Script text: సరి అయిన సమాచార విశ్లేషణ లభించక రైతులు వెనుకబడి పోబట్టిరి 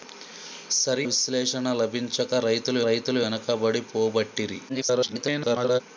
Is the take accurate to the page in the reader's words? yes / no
no